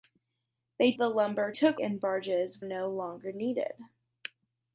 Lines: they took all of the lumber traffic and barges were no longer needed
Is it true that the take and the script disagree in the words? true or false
true